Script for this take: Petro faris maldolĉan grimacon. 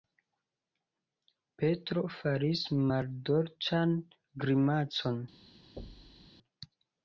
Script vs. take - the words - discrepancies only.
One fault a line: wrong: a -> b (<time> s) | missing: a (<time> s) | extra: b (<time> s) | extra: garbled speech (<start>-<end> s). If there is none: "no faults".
no faults